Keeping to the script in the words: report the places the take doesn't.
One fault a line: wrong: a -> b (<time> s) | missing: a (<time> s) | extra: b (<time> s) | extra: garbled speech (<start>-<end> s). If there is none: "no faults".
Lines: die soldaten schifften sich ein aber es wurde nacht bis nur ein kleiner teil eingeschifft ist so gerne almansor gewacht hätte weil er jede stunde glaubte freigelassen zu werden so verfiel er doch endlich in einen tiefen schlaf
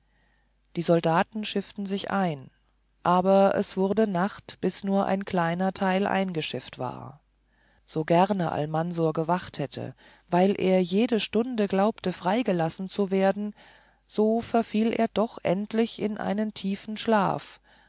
wrong: ist -> war (6.8 s)